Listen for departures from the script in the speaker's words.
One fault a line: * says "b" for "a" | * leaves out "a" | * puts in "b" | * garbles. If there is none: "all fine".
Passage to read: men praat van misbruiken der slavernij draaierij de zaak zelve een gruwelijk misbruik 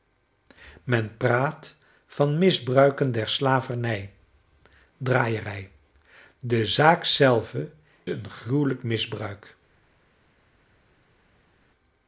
all fine